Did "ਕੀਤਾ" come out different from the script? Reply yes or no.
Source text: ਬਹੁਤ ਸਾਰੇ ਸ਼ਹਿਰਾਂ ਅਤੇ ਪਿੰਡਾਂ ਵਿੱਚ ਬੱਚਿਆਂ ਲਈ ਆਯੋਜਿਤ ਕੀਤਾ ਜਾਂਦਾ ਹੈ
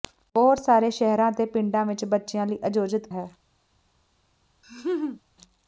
yes